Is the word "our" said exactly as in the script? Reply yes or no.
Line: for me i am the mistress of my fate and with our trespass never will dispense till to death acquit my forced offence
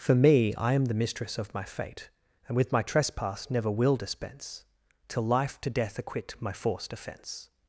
no